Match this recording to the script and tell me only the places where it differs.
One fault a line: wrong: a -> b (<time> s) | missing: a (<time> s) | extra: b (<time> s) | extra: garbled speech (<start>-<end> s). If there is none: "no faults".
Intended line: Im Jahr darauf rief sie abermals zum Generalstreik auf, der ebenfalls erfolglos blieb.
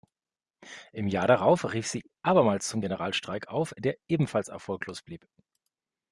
no faults